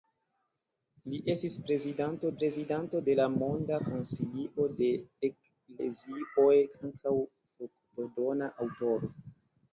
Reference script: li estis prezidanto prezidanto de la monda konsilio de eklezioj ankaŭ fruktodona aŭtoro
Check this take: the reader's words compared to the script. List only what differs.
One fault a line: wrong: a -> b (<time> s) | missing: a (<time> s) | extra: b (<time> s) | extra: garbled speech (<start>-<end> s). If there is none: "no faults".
no faults